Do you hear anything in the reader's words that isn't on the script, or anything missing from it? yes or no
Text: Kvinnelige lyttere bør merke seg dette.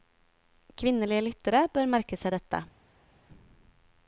no